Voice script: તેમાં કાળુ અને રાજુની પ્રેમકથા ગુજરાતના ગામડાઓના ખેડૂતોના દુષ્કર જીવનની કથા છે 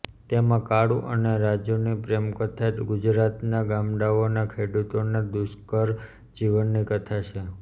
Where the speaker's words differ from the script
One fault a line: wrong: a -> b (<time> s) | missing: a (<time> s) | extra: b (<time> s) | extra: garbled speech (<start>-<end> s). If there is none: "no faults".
no faults